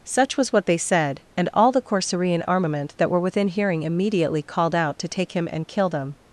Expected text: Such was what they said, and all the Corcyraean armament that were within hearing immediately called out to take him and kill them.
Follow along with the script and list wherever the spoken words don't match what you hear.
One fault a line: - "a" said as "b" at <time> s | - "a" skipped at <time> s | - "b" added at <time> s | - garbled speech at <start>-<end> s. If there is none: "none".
none